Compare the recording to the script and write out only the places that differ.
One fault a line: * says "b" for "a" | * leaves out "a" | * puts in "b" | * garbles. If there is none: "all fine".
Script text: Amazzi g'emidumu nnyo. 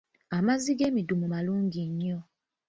* puts in "malungi"